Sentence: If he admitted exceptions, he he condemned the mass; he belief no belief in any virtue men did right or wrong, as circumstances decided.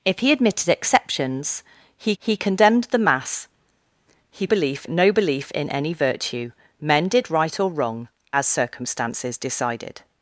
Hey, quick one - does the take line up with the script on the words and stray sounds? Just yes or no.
yes